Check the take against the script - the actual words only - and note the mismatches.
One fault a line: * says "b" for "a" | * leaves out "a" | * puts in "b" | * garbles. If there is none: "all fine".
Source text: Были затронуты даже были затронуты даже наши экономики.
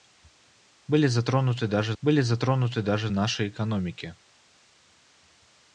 all fine